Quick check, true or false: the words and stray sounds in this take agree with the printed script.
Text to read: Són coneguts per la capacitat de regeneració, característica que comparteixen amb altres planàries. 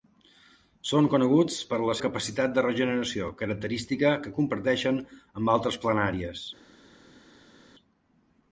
true